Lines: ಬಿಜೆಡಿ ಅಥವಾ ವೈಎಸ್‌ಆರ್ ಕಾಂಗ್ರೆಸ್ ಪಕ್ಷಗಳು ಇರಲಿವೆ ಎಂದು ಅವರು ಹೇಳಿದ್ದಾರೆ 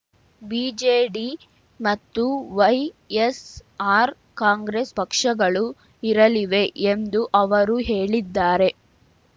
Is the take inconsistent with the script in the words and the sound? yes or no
yes